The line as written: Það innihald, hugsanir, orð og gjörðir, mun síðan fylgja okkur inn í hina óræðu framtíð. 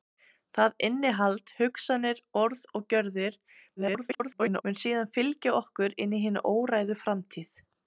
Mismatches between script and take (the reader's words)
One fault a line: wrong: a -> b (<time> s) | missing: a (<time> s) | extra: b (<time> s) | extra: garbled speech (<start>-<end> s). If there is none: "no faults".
extra: garbled speech (3.8-4.6 s)